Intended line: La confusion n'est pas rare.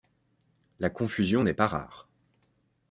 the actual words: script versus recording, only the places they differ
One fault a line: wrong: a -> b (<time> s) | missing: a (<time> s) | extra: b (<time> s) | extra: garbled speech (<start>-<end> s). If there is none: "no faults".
no faults